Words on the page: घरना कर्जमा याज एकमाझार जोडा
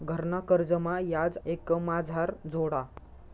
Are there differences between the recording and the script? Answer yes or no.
no